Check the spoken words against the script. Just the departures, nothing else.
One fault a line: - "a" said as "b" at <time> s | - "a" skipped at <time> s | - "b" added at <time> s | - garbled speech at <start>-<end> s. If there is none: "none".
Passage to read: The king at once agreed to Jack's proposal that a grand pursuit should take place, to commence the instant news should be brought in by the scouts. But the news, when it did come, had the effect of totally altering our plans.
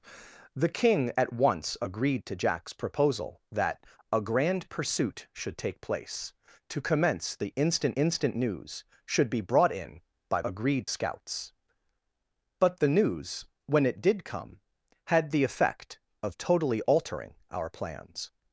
- "instant" added at 7.9 s
- "the" said as "agreed" at 10.4 s